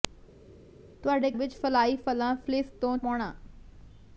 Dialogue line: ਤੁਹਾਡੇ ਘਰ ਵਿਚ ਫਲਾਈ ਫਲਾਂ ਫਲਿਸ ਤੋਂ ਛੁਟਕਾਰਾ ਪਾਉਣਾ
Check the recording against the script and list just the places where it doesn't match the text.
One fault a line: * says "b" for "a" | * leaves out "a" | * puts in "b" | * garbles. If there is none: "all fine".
* leaves out "ਘਰ"
* leaves out "ਛੁਟਕਾਰਾ"